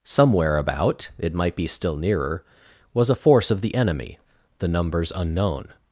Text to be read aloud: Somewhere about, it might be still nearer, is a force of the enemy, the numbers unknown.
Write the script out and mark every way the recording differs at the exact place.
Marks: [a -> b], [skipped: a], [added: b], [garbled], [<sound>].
Somewhere about, it might be still nearer, [is -> was] a force of the enemy, the numbers unknown.